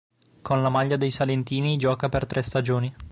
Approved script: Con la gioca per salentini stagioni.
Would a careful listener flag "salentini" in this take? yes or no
yes